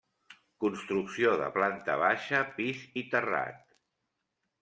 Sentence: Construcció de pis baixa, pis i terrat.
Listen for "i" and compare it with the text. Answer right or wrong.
right